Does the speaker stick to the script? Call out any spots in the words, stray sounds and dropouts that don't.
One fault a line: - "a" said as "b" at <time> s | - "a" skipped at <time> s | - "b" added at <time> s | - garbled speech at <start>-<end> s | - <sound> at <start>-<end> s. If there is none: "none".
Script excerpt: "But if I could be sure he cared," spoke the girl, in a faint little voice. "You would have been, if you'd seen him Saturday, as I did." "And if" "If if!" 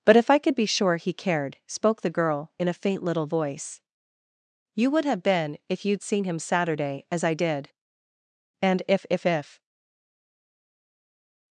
none